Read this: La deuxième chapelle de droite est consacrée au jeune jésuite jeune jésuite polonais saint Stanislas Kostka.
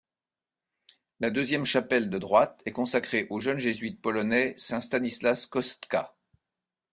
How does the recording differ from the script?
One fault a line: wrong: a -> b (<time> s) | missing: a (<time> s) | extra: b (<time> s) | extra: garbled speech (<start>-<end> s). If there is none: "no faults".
missing: jeune jésuite (4.0 s)